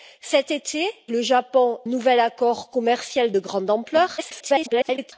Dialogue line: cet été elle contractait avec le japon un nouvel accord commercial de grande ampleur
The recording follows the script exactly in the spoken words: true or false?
false